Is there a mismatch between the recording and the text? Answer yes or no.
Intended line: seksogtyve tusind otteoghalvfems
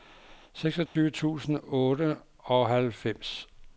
yes